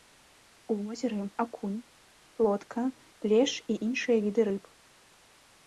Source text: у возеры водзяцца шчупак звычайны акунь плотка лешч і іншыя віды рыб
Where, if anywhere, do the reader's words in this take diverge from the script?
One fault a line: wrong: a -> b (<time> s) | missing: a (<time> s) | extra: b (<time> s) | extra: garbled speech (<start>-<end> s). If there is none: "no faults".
missing: водзяцца шчупак звычайны (1.2 s)